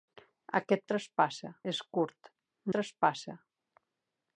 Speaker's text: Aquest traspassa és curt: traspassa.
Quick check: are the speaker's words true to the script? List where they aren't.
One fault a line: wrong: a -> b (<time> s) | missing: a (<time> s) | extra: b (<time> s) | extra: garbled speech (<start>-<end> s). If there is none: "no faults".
no faults